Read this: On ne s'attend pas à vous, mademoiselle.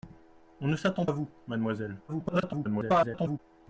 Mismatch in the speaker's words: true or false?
true